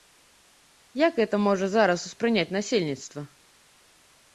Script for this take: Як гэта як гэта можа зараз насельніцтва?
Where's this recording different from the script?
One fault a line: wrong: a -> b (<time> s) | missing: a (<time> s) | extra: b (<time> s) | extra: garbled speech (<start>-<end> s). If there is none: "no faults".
missing: як гэта (1.4 s)
extra: успрыняць (2.1 s)